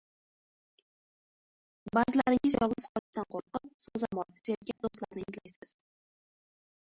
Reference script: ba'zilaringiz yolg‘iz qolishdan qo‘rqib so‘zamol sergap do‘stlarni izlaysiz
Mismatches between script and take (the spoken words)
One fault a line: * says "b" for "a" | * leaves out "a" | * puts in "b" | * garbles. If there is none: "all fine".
all fine